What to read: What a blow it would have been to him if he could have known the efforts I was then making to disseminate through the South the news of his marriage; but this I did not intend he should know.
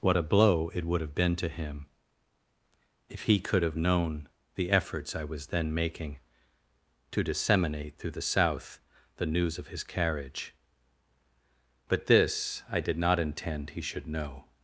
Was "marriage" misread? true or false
true